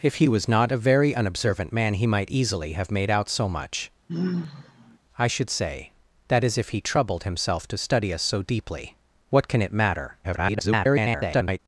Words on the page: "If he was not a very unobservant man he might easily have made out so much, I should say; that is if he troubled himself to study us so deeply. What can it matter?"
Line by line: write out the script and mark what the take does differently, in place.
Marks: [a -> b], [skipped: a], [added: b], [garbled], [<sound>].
"If he was not a very unobservant man he might easily have made out so much, [sigh] I should say; that is if he troubled himself to study us so deeply. What can it matter?" [garbled]